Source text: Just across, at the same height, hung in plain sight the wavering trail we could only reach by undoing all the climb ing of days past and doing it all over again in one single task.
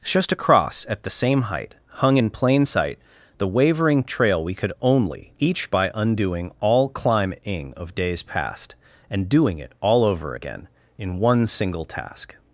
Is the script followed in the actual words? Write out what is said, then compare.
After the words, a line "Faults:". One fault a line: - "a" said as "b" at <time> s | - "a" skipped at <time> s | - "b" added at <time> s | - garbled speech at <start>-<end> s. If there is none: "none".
Just across, at the same height, hung in plain sight the wavering trail we could only each by undoing all climb ing of days past and doing it all over again in one single task.
Faults:
- "reach" said as "each" at 5.4 s
- "the" skipped at 6.9 s